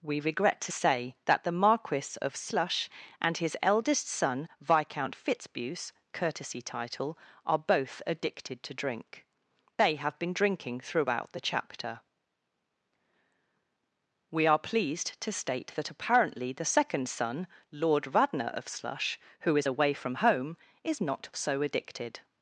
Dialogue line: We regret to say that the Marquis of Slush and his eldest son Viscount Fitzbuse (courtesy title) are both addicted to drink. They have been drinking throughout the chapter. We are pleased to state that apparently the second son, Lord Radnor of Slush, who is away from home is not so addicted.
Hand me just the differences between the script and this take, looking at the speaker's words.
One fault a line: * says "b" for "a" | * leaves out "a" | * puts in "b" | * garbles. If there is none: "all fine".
all fine